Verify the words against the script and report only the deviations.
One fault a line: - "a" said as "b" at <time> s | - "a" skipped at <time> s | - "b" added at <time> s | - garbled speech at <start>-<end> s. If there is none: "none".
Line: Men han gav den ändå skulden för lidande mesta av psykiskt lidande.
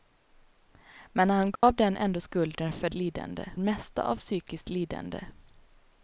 none